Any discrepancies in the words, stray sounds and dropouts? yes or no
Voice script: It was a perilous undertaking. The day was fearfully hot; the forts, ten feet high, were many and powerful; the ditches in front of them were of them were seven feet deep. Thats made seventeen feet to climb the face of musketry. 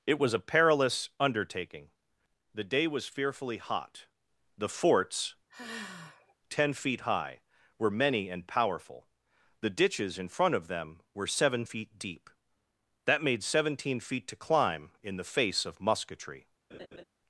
yes